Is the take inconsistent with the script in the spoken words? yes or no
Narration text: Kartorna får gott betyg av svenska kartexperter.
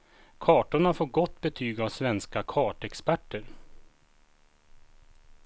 no